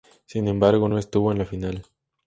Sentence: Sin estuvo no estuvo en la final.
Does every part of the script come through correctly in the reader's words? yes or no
no